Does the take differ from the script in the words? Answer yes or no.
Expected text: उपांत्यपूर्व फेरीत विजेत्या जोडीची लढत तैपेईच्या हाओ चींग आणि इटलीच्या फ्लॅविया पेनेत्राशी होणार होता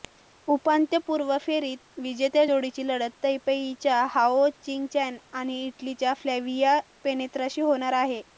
yes